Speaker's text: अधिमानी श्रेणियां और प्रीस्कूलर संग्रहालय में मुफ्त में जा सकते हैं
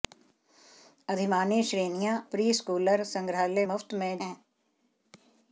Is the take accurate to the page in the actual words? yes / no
no